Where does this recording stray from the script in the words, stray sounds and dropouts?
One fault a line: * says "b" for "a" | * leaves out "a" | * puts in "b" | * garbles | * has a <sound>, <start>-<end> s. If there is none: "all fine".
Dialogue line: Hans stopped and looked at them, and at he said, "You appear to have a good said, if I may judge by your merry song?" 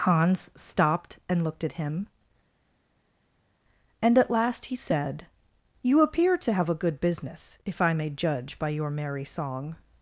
* says "him" for "them"
* puts in "last"
* says "business" for "said"